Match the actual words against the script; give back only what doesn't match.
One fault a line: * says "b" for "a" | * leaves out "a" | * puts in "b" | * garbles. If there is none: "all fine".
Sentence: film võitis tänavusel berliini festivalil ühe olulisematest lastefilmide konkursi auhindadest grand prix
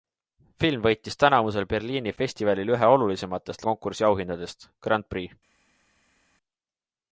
* leaves out "lastefilmide"